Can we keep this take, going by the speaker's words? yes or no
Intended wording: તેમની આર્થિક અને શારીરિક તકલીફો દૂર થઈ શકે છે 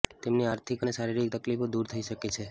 yes